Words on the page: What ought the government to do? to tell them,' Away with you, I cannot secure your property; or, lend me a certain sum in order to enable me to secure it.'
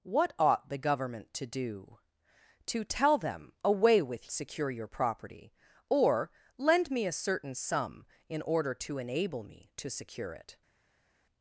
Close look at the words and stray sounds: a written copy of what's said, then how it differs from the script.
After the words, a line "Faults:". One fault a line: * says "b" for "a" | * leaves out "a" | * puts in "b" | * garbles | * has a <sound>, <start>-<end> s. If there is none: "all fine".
What ought the government to do? to tell them,' Away with secure your property; or, lend me a certain sum in order to enable me to secure it.'
Faults:
* leaves out "you I cannot"